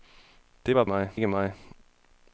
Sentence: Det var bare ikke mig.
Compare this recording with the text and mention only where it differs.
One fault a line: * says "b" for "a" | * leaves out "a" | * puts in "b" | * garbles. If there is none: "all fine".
* says "mig" for "bare"